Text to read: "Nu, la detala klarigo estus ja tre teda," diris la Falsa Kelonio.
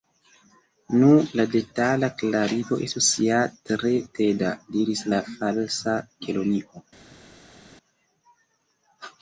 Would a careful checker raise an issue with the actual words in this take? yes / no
no